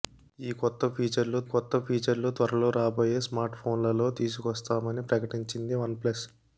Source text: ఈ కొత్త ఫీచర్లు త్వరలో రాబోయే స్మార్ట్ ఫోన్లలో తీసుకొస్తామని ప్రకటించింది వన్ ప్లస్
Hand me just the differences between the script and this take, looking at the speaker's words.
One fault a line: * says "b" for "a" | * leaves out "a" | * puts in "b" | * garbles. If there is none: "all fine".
* puts in "కొత్త ఫీచర్లు"